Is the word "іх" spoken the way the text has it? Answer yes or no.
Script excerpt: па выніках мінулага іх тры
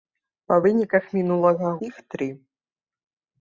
yes